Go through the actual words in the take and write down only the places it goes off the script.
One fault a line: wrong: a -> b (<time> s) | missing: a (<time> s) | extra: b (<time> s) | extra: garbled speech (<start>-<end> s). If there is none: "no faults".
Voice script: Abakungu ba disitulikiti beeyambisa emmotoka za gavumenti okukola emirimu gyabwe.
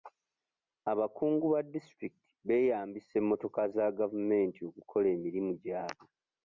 no faults